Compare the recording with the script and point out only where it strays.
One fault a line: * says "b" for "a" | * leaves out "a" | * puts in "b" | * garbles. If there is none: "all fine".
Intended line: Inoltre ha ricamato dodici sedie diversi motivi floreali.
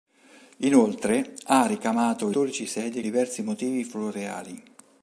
all fine